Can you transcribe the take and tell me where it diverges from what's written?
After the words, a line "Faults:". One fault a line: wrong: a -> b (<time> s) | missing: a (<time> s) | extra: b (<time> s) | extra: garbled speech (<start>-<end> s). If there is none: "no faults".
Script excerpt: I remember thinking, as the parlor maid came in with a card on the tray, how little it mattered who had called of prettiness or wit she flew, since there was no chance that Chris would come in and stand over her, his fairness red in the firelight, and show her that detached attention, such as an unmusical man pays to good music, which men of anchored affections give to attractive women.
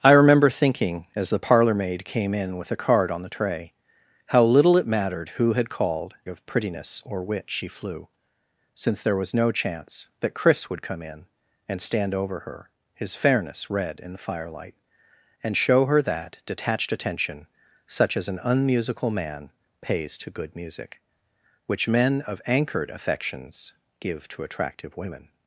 I remember thinking, as the parlor maid came in with a card on the tray, how little it mattered who had called of prettiness or wit she flew, since there was no chance that Chris would come in and stand over her, his fairness red in the firelight, and show her that detached attention, such as an unmusical man pays to good music, which men of anchored affections give to attractive women.
Faults:
no faults